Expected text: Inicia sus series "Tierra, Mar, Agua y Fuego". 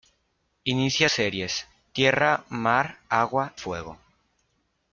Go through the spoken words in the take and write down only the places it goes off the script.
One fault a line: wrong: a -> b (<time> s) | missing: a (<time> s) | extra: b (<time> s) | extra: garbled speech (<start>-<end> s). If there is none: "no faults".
missing: sus (1.1 s)
missing: y (3.5 s)